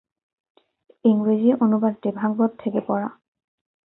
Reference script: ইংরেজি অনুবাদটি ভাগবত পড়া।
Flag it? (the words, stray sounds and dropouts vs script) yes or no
yes